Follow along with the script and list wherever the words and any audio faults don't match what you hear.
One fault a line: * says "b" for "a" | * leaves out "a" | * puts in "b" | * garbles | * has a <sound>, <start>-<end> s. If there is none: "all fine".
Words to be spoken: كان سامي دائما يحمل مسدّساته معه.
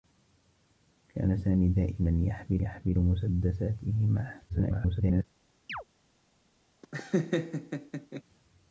* puts in "يحمل"
* garbles
* has a chirp, 5.7-5.8 s
* has a laugh, 6.8-8.2 s